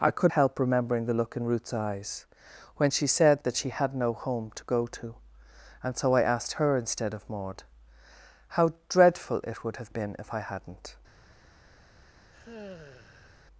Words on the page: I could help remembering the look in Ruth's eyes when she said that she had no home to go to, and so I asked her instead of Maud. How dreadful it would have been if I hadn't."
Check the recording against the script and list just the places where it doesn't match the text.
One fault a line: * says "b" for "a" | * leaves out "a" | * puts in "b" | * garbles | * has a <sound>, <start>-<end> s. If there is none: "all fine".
* has a sigh, 12.3-13.5 s